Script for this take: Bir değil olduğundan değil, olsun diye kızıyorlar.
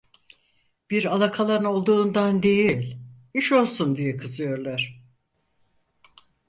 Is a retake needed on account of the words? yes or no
yes